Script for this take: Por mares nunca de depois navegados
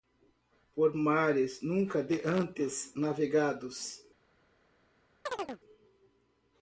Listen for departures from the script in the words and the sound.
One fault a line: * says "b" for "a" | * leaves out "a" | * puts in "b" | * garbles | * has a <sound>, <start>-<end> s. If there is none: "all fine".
* says "antes" for "depois"
* has a chirp, 5.3-5.6 s